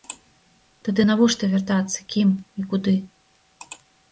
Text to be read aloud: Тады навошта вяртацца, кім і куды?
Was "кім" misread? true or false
false